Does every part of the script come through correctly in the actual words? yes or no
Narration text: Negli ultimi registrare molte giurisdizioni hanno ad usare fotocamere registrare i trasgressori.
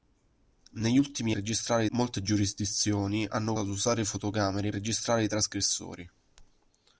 yes